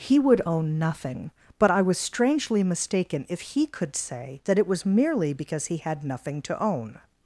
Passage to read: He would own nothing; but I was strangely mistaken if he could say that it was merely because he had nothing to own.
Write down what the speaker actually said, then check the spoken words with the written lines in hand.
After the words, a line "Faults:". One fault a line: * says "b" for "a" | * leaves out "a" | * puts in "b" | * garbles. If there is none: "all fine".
He would own nothing; but I was strangely mistaken if he could say that it was merely because he had nothing to own.
Faults:
all fine